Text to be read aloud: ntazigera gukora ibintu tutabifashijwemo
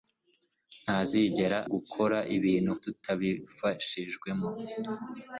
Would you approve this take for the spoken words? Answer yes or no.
yes